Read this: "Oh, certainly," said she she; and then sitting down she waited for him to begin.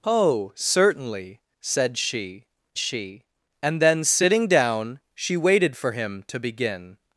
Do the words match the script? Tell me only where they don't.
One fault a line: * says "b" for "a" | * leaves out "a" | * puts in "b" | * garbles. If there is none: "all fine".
all fine